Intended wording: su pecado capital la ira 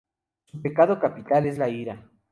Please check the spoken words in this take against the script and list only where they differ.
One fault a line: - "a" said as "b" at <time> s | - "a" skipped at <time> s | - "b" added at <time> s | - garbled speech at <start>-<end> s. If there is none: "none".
- "es" added at 1.5 s